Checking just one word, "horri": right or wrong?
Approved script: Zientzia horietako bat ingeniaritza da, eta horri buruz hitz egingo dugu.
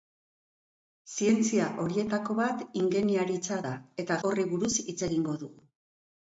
right